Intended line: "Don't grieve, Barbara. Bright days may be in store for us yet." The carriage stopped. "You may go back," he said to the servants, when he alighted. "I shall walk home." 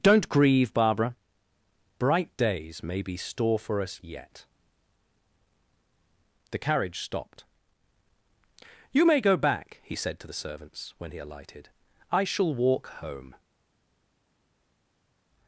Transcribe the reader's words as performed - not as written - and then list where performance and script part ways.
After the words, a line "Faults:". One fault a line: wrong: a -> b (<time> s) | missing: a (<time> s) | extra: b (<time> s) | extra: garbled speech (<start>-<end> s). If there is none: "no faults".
"Don't grieve, Barbara. Bright days may be store for us yet." The carriage stopped. "You may go back," he said to the servants, when he alighted. "I shall walk home."
Faults:
missing: in (3.2 s)